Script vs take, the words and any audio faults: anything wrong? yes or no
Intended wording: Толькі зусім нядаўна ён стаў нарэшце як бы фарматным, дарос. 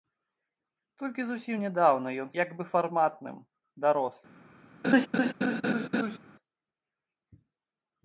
yes